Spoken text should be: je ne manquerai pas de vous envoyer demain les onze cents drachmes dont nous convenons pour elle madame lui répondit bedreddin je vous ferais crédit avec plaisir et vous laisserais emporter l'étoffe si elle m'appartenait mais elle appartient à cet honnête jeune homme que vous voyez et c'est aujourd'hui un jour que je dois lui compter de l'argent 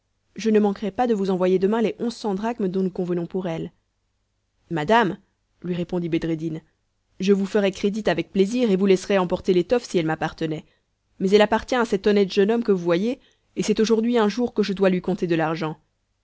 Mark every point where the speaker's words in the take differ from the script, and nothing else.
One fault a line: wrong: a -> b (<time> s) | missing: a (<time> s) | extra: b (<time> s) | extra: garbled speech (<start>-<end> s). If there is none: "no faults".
no faults